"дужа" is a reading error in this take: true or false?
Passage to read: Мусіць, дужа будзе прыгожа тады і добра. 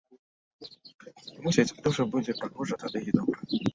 false